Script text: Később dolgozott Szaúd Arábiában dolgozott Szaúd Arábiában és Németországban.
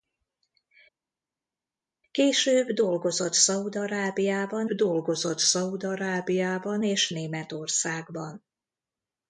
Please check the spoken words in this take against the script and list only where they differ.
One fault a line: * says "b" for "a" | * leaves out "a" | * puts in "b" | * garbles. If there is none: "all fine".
all fine